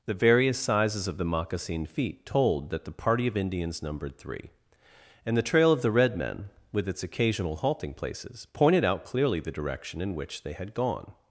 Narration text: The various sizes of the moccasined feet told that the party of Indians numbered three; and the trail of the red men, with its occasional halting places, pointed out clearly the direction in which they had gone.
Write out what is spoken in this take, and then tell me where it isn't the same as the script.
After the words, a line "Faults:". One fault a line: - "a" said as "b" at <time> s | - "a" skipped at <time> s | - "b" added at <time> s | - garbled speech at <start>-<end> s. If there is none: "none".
The various sizes of the moccasined feet told that the party of Indians numbered three; and the trail of the red men, with its occasional halting places, pointed out clearly the direction in which they had gone.
Faults:
none